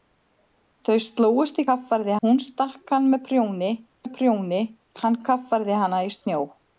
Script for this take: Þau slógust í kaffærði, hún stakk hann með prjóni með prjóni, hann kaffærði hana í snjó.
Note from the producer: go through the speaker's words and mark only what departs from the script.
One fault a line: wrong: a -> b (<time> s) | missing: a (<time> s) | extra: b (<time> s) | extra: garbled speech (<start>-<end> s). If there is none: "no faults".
no faults